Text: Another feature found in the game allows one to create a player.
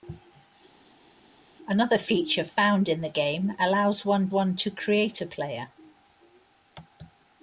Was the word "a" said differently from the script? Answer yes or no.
no